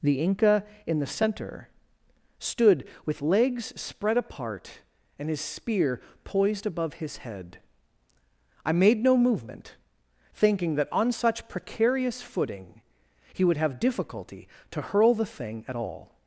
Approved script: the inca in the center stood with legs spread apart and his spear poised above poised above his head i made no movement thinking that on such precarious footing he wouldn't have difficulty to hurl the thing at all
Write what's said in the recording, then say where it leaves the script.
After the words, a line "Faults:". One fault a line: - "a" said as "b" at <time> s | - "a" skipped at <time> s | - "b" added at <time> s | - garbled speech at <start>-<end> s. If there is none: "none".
the inca in the center stood with legs spread apart and his spear poised above his head i made no movement thinking that on such precarious footing he would have difficulty to hurl the thing at all
Faults:
- "poised above" skipped at 7.0 s
- "wouldn't" said as "would" at 13.4 s